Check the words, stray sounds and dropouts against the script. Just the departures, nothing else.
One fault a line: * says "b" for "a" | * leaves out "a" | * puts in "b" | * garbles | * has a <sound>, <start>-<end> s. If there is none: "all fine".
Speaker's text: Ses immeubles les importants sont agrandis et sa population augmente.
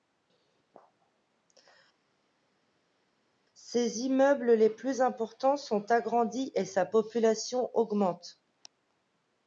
* puts in "plus"